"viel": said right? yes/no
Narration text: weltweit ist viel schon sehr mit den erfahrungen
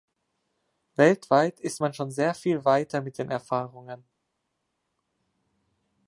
no